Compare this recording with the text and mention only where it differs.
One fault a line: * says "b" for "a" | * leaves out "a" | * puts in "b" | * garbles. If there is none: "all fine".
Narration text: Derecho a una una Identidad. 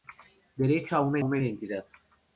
all fine